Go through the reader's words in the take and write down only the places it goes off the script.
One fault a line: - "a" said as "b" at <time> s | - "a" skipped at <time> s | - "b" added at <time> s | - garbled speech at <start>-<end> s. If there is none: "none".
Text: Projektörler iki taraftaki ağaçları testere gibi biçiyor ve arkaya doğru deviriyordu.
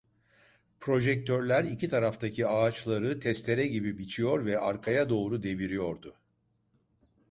none